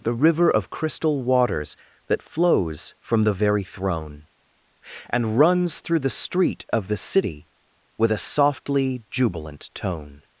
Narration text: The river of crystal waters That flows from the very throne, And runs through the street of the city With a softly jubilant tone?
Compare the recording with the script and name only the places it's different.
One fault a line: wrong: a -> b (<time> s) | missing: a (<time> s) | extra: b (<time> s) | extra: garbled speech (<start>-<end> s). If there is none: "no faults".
no faults